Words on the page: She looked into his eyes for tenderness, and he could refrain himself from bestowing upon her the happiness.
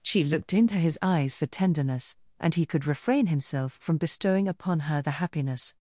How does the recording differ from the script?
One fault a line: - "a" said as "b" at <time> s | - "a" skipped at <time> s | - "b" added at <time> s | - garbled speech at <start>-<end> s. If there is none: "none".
none